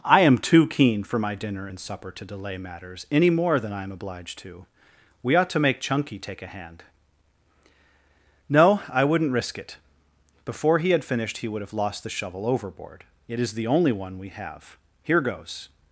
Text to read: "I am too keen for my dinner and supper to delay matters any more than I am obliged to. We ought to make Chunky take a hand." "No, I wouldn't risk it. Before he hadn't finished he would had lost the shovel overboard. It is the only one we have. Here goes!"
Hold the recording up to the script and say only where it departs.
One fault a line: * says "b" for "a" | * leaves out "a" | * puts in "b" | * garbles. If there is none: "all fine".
* says "had" for "hadn't"
* says "have" for "had"